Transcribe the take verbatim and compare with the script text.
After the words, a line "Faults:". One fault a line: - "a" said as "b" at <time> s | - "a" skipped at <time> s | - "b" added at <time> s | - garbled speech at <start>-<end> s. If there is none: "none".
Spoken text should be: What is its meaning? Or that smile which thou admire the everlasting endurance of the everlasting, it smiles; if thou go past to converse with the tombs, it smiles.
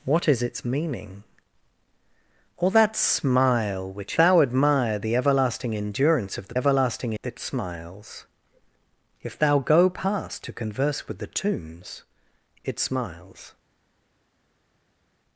What is its meaning? Or that smile which thou admire the everlasting endurance of the everlasting, it smiles; if thou go past to converse with the tombs, it smiles.
Faults:
none